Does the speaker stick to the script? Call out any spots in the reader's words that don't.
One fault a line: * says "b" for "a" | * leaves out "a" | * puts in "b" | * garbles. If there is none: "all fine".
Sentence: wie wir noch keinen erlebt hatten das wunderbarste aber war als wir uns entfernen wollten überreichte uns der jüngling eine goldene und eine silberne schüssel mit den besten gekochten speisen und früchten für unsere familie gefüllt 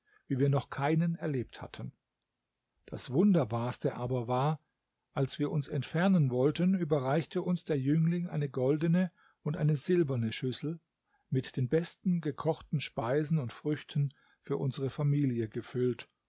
all fine